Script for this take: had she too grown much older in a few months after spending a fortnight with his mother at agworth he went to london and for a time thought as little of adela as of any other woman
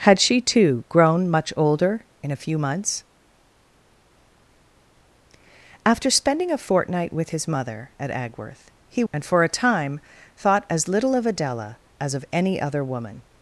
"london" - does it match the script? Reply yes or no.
no